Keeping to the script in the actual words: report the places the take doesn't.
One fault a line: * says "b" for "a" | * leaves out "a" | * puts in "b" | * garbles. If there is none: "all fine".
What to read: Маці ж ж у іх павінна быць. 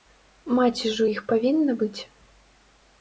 * leaves out "ж"